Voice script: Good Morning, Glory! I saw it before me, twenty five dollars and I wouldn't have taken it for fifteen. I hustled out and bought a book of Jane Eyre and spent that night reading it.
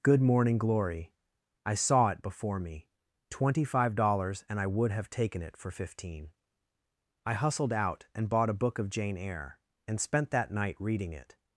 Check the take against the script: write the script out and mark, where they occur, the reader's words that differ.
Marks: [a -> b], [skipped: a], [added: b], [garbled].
Good Morning, Glory! I saw it before me, twenty five dollars and I [wouldn't -> would] have taken it for fifteen. I hustled out and bought a book of Jane Eyre and spent that night reading it.